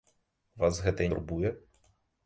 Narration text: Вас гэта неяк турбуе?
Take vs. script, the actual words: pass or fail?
fail